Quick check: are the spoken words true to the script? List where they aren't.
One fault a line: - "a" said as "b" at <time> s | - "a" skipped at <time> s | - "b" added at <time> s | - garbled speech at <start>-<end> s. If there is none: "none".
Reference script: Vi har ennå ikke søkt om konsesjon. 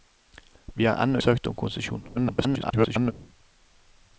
- "ikke" skipped at 1.2 s
- garbled speech at 2.1-3.1 s